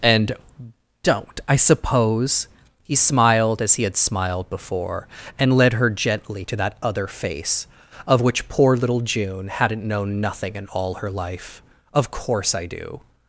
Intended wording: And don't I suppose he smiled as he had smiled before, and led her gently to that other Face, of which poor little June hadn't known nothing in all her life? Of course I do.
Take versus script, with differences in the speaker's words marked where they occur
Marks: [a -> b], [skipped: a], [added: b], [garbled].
And don't I suppose he smiled as he had smiled before, and led her gently to that other Face, of which poor little June hadn't known nothing in all her life? Of course I do.